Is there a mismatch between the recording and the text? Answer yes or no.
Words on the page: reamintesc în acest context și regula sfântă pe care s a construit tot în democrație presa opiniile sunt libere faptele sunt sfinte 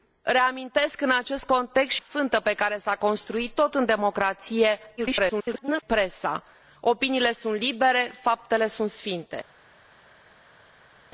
yes